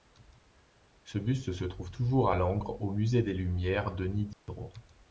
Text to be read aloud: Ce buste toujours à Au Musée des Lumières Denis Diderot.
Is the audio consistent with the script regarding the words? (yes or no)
no